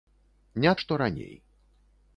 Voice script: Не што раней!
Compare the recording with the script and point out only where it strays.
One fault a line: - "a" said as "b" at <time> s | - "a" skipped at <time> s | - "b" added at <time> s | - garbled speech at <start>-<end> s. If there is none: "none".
none